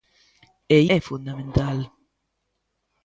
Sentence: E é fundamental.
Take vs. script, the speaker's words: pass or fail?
pass